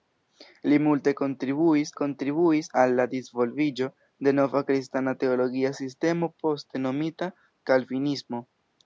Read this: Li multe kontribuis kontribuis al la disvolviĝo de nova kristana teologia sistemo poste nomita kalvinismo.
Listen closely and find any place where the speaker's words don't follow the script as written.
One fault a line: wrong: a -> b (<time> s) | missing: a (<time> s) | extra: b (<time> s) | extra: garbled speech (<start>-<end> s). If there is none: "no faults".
no faults